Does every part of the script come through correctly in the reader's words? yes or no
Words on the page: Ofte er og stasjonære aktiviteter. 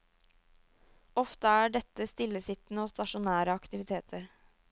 no